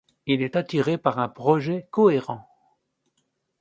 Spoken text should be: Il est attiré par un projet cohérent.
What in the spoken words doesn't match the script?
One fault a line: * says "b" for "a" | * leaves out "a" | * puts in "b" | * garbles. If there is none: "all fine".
all fine